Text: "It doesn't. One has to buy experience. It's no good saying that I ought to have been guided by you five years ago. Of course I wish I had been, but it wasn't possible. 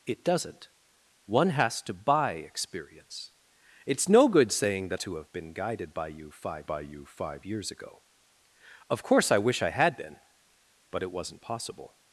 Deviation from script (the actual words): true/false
true